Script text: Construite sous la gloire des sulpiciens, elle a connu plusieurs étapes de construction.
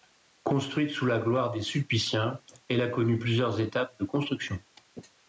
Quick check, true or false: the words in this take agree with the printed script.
true